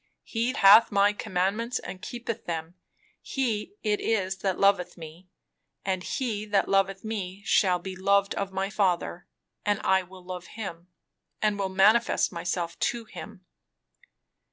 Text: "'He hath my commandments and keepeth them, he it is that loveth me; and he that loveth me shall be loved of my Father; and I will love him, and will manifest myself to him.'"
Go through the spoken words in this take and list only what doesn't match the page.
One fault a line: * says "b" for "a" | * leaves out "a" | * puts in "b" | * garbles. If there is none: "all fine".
all fine